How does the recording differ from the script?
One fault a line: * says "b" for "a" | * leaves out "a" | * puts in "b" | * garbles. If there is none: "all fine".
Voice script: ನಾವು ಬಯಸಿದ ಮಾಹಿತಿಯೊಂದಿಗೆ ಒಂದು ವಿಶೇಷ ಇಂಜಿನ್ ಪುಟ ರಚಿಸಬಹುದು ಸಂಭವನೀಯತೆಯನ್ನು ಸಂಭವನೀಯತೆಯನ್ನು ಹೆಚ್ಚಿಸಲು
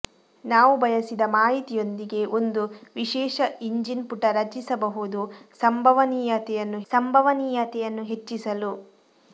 all fine